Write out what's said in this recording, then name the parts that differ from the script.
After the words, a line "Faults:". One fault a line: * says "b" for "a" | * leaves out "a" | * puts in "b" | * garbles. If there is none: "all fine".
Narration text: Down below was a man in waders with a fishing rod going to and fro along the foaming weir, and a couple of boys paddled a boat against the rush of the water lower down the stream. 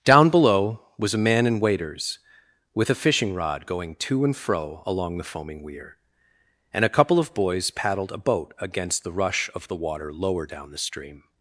Down below was a man in waders with a fishing rod going to and fro along the foaming weir, and a couple of boys paddled a boat against the rush of the water lower down the stream.
Faults:
all fine